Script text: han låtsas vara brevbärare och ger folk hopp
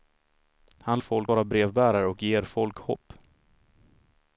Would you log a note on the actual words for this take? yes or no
yes